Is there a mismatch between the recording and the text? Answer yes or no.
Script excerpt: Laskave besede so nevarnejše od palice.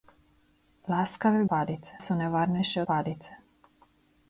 yes